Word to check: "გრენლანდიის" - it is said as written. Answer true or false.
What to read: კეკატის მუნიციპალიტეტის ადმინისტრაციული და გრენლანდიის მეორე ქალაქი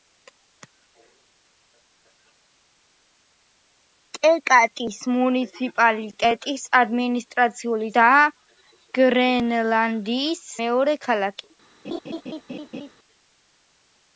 true